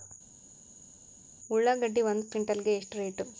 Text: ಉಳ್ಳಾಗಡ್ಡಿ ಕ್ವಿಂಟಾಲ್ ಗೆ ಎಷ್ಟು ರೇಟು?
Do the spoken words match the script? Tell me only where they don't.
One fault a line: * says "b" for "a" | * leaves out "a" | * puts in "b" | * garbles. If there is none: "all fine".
* puts in "ಒಂದು"